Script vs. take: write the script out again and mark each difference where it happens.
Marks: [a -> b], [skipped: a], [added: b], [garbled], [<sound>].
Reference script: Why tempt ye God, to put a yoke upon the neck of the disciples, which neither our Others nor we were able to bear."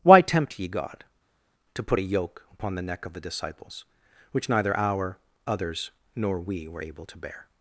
Why tempt ye God, to put a yoke upon the neck of the disciples, which neither our Others nor we were able to bear."